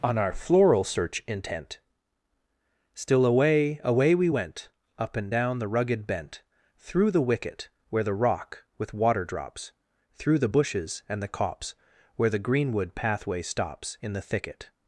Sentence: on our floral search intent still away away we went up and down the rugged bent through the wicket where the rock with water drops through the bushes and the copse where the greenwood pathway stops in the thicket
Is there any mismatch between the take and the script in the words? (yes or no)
no